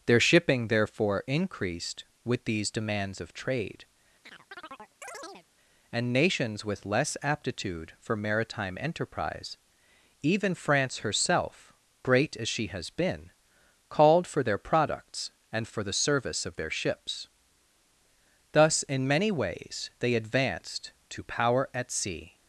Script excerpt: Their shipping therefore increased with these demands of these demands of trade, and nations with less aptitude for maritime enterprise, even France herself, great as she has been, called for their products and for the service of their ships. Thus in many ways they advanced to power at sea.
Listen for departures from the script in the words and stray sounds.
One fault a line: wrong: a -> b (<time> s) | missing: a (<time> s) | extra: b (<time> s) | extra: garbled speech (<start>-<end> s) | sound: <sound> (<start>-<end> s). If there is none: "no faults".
missing: these demands of (3.3 s)
sound: chirp (4.2-5.5 s)